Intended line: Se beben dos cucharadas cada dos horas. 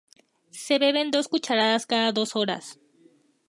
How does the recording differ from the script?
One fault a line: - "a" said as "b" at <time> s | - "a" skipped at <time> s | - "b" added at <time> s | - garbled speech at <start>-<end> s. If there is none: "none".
none